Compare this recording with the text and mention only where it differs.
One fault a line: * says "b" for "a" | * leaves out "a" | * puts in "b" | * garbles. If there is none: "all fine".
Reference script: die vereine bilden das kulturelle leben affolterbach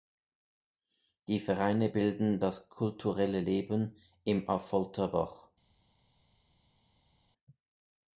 * puts in "im"